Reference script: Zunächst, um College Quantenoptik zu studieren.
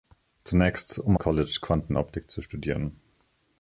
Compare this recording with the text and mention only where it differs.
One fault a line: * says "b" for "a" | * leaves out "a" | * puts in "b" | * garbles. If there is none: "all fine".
all fine